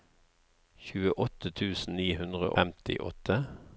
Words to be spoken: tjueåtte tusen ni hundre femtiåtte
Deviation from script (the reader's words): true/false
false